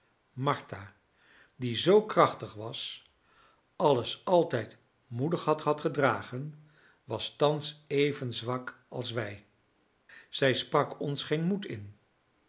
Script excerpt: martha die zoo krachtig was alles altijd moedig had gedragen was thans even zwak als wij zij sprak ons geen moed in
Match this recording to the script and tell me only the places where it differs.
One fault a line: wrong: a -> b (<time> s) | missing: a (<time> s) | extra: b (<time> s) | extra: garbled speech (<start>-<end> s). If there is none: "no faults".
extra: had (5.6 s)